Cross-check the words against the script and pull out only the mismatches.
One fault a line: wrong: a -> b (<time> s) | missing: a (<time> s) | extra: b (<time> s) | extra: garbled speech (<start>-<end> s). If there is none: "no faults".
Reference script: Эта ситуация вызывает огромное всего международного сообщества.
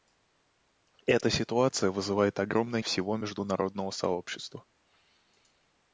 no faults